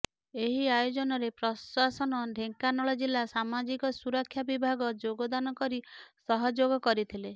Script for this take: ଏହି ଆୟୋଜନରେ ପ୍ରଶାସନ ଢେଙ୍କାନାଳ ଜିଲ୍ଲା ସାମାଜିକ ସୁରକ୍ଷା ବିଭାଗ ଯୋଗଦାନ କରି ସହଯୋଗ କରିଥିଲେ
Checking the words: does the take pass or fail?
pass